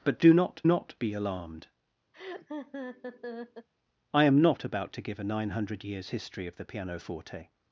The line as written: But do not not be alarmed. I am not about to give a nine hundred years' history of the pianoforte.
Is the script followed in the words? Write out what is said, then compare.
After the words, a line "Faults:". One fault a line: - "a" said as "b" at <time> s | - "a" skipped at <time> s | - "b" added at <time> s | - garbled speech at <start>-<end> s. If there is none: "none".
But do not not be alarmed. I am not about to give a nine hundred years' history of the pianoforte.
Faults:
none